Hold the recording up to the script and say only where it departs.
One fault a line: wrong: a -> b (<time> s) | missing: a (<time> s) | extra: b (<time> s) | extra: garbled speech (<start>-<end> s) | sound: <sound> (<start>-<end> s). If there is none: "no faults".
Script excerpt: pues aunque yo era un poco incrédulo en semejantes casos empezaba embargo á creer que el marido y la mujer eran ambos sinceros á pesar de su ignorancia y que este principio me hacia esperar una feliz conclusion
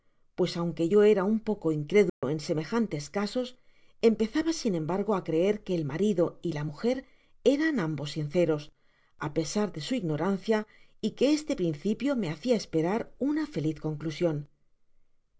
sound: dropout (2.1-2.2 s)
extra: sin (4.6 s)